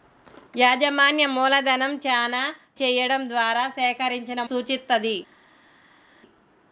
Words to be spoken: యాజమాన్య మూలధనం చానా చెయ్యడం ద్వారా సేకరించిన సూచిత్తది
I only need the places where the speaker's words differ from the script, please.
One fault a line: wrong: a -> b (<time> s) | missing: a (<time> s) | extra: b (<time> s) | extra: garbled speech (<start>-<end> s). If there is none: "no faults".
no faults